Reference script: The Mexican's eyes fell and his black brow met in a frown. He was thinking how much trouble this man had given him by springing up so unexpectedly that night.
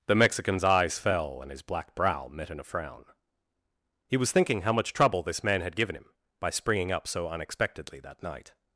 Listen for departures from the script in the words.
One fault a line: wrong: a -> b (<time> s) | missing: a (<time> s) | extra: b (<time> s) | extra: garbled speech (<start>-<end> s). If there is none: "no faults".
no faults